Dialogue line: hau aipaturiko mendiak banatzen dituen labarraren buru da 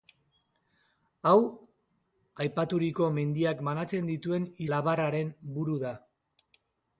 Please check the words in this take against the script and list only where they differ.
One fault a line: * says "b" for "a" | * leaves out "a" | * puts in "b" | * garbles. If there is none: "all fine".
all fine